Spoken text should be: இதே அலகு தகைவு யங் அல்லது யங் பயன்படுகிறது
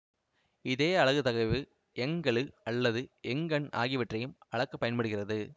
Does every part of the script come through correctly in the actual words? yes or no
no